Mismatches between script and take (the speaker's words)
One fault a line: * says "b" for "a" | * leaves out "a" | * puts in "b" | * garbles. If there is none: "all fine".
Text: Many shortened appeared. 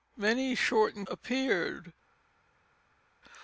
all fine